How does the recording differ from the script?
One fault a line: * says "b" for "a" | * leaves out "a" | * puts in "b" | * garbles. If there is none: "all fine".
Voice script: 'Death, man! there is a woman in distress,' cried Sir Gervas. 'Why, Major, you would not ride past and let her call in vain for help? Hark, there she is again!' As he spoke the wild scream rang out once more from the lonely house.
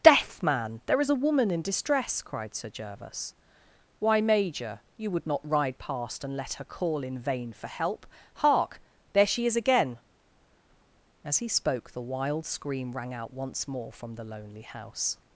all fine